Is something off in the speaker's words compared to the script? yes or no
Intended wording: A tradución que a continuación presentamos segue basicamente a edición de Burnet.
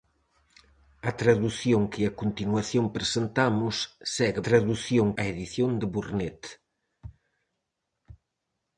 yes